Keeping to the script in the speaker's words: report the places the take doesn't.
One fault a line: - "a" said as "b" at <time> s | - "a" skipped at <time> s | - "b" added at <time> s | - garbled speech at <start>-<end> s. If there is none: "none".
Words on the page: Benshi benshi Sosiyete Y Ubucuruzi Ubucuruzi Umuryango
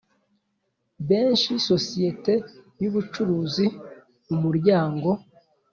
- "benshi" skipped at 1.5 s
- "Ubucuruzi" skipped at 3.6 s